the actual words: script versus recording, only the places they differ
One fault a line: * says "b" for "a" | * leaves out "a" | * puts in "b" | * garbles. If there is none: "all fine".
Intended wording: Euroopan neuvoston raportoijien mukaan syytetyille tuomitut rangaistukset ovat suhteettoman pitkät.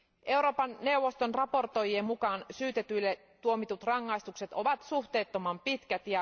all fine